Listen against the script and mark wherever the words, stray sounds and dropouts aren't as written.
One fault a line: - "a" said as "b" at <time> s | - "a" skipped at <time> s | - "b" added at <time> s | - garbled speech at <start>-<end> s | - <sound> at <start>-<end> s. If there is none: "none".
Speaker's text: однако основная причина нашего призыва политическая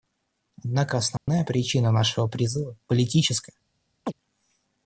- dropout at 1.2-1.3 s
- chirp at 4.0-4.1 s